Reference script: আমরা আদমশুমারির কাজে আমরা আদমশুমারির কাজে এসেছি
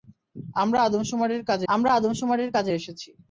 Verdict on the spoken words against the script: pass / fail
pass